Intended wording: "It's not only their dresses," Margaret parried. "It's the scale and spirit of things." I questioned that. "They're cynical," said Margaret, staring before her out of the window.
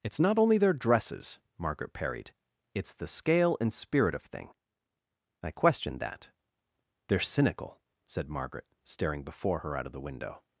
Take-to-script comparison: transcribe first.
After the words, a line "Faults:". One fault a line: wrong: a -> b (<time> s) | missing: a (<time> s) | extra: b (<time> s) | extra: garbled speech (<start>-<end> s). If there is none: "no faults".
"It's not only their dresses," Margaret parried. "It's the scale and spirit of thing." I questioned that. "They're cynical," said Margaret, staring before her out of the window.
Faults:
wrong: things -> thing (4.2 s)